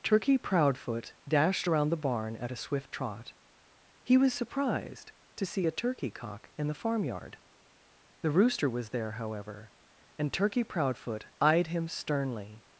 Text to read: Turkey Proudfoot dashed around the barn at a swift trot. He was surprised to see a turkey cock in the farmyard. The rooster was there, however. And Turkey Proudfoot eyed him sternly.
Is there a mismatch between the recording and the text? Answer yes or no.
no